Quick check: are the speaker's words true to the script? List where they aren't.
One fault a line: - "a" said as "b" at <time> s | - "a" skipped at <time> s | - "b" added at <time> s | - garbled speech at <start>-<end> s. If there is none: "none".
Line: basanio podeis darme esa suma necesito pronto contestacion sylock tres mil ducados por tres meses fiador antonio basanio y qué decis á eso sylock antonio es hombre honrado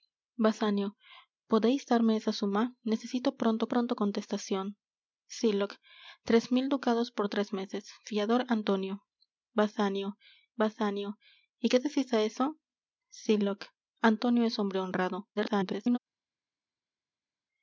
- "pronto" added at 3.7 s
- "basanio" added at 10.6 s
- garbled speech at 15.4-16.0 s